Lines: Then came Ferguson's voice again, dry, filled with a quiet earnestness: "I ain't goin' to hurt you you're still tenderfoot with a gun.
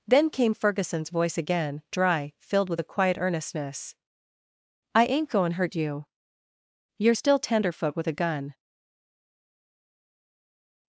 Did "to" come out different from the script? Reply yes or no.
yes